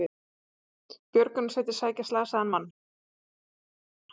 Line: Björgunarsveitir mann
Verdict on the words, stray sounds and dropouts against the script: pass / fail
fail